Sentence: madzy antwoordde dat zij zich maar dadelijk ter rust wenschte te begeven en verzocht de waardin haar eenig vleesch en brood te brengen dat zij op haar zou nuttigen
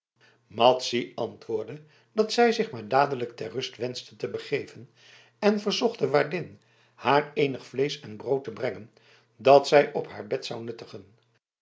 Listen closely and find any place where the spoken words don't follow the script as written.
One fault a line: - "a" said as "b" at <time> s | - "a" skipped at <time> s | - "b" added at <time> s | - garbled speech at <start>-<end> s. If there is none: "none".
- "bed" added at 10.3 s